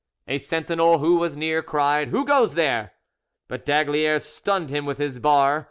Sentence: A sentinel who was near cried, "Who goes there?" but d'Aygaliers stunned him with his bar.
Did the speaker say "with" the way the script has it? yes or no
yes